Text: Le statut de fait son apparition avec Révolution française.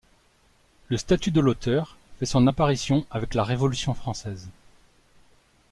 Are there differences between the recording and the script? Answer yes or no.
yes